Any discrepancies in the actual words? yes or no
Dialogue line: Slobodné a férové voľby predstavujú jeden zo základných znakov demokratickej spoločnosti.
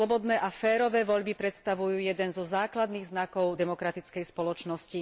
no